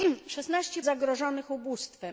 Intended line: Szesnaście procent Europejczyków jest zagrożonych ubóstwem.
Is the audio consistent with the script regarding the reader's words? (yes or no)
no